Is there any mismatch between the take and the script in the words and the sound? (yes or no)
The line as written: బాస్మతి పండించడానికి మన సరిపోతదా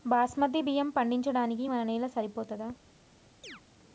yes